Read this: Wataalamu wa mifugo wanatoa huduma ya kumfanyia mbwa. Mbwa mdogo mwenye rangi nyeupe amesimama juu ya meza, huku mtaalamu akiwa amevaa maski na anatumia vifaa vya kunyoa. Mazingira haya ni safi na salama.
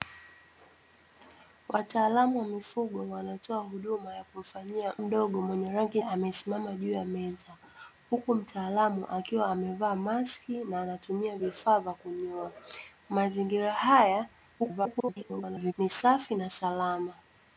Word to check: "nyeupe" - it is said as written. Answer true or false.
false